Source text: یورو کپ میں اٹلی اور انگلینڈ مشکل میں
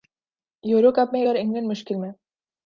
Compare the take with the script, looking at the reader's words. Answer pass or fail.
fail